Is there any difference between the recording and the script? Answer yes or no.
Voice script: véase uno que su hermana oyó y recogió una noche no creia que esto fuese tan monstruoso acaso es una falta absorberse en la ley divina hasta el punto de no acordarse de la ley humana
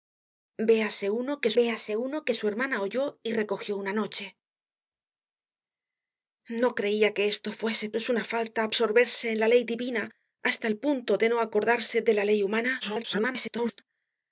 yes